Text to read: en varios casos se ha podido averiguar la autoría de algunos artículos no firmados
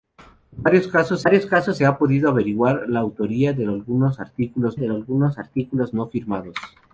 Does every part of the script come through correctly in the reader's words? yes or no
no